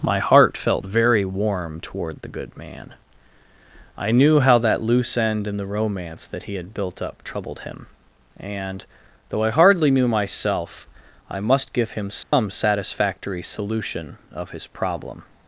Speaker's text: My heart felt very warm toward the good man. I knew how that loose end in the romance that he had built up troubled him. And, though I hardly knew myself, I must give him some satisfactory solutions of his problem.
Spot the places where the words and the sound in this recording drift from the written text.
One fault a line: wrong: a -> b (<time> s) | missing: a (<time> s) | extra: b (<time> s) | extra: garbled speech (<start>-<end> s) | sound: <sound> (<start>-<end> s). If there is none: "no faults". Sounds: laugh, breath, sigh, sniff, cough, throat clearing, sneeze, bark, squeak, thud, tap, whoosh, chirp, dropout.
sound: dropout (12.2-12.3 s)
wrong: solutions -> solution (13.4 s)